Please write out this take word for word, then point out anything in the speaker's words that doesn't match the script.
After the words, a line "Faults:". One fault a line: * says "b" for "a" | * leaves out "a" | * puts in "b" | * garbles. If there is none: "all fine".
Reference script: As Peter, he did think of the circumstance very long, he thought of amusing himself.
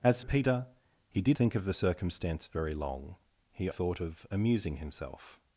As Peter, he did think of the circumstance very long, he thought of amusing himself.
Faults:
all fine